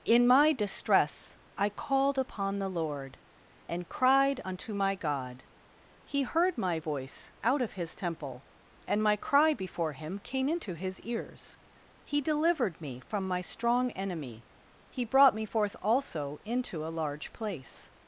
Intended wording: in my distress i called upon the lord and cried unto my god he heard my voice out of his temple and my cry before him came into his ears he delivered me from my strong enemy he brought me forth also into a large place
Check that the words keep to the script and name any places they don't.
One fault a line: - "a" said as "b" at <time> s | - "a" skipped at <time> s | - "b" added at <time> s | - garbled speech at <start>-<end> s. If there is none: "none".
none